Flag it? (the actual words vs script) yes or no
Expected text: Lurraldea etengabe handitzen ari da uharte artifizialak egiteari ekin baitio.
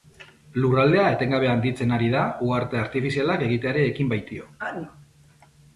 no